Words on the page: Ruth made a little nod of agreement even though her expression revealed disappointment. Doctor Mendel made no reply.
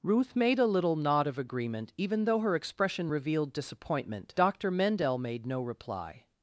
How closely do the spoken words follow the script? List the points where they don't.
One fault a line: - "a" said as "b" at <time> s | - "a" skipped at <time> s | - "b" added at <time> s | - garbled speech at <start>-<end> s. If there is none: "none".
none